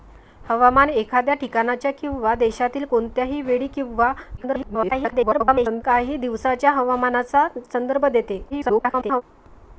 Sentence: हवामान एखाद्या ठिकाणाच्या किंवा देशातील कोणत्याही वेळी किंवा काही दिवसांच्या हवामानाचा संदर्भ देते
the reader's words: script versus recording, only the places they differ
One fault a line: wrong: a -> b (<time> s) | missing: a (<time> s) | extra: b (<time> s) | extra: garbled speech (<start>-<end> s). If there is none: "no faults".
extra: garbled speech (4.4-5.8 s)
extra: garbled speech (8.5-9.2 s)